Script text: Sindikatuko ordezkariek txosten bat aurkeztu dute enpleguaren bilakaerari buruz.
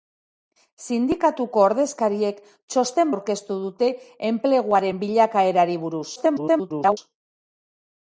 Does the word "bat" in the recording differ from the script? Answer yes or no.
yes